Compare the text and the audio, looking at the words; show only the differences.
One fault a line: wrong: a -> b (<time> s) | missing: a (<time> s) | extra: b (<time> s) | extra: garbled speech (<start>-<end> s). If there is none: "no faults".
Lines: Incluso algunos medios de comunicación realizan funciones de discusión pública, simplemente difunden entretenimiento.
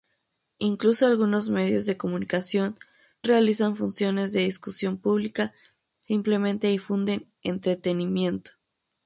no faults